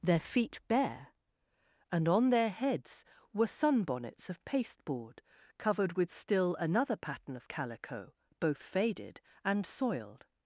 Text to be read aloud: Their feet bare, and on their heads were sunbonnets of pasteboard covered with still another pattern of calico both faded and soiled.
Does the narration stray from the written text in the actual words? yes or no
no